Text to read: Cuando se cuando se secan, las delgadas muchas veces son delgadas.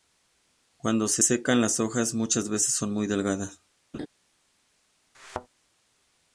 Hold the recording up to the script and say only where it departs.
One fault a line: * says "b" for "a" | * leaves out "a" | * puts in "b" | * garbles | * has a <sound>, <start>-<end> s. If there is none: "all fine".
* leaves out "cuando se"
* says "hojas" for "delgadas"
* puts in "muy"
* has a laugh, 3.9-4.1 s
* has a thud, 5.1-5.5 s